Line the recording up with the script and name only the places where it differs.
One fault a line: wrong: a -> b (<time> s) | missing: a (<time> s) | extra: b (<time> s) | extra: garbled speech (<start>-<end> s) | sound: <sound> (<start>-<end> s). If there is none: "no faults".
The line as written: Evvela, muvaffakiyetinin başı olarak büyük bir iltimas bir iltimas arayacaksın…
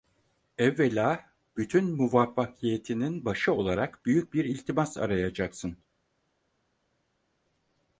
extra: bütün (1.6 s)
missing: bir iltimas (5.0 s)